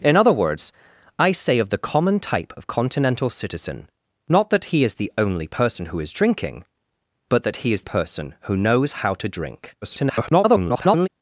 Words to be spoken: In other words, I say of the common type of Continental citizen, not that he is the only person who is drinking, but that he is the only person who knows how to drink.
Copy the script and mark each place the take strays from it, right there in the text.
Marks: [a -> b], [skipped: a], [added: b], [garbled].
In other words, I say of the common type of Continental citizen, not that he is the only person who is drinking, but that he is [skipped: the only] person who knows how to drink. [garbled]